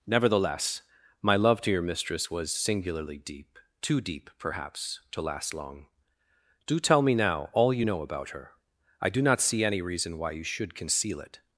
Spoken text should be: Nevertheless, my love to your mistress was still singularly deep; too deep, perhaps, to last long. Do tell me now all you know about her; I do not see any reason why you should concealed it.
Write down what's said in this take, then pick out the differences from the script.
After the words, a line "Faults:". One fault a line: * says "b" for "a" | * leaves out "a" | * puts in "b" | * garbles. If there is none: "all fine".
Nevertheless, my love to your mistress was singularly deep; too deep, perhaps, to last long. Do tell me now all you know about her; I do not see any reason why you should conceal it.
Faults:
* leaves out "still"
* says "conceal" for "concealed"